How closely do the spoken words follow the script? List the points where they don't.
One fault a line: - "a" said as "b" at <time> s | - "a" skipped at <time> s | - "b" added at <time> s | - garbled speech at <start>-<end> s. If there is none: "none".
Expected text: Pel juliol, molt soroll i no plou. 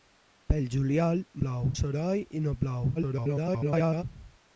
- "molt" said as "plou" at 1.4 s
- garbled speech at 3.0-4.0 s